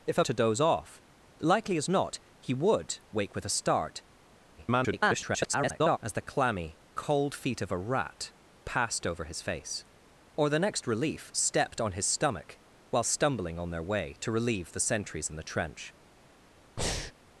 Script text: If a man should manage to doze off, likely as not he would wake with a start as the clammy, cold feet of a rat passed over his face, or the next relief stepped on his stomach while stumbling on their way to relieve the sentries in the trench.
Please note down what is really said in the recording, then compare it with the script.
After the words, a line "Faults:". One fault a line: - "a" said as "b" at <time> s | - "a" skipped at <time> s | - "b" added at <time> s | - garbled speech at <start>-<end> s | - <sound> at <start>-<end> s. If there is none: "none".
If a to doze off, likely as not he would wake with a start [garbled] as the clammy, cold feet of a rat passed over his face, or the next relief stepped on his stomach while stumbling on their way to relieve the sentries in the trench.
Faults:
- "man should manage" skipped at 0.2 s
- garbled speech at 4.6-6.0 s
- breath at 16.8-17.1 s